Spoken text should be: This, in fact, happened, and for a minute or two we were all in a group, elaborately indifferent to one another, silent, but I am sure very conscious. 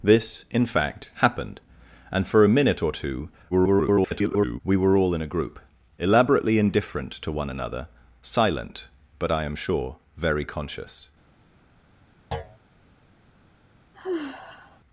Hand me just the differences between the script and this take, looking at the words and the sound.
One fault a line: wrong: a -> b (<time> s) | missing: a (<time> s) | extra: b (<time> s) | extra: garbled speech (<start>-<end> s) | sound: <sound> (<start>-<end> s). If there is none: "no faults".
extra: garbled speech (3.5-4.6 s)
sound: thud (12.3-12.6 s)
sound: sigh (13.9-14.8 s)